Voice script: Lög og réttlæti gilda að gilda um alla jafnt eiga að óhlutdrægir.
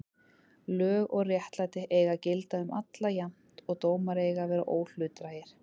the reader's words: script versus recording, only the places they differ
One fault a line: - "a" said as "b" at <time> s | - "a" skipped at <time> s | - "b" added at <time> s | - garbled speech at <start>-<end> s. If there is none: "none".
- "gilda" said as "eiga" at 2.0 s
- "og dómar" added at 3.7 s
- "vera" added at 4.5 s